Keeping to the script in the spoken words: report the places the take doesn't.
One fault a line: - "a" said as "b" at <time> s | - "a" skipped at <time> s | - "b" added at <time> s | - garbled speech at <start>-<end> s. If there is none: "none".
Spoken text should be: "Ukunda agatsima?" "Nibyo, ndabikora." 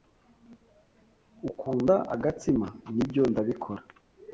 none